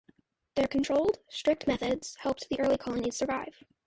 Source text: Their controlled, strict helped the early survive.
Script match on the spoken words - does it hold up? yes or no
no